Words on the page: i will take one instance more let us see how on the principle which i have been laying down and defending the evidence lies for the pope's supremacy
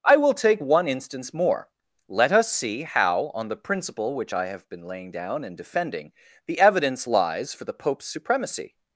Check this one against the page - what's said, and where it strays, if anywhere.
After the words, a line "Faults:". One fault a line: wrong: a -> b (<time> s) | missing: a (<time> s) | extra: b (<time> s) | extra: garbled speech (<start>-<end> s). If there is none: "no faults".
i will take one instance more let us see how on the principle which i have been laying down and defending the evidence lies for the pope's supremacy
Faults:
no faults